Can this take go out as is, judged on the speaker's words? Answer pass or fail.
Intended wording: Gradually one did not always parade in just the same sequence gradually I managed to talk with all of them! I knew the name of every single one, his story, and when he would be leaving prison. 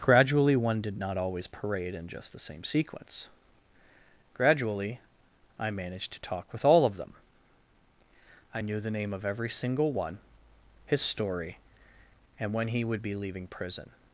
pass